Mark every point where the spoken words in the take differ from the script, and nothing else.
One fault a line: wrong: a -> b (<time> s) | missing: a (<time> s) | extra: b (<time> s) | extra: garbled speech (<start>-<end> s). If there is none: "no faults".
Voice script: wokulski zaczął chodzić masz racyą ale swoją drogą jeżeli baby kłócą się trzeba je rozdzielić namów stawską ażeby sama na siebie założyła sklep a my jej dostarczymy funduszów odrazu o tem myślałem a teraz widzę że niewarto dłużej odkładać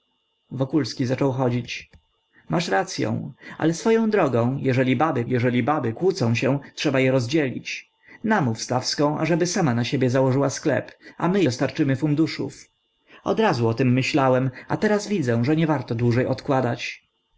extra: jeżeli baby (5.3 s)
missing: jej (11.4 s)